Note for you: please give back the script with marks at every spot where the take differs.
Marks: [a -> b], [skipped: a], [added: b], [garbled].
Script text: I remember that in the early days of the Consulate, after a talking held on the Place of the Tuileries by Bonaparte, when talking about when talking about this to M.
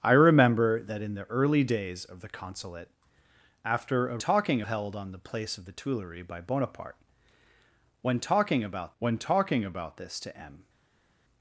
I remember that in the early days of the Consulate, after a talking held on the Place of the Tuileries by Bonaparte, when talking about when talking about this to M.